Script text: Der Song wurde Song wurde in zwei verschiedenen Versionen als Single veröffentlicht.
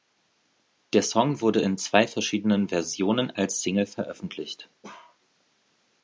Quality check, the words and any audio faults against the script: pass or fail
fail